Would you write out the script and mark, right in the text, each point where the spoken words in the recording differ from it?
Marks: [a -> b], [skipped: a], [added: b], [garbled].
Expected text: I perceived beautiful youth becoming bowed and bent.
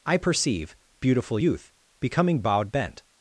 I [perceived -> perceive] beautiful youth becoming bowed [skipped: and] bent.